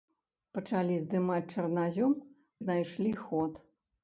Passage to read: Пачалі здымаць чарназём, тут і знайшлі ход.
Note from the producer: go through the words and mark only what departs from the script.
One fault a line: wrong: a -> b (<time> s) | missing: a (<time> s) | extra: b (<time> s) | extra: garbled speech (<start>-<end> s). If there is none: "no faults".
missing: тут (2.2 s)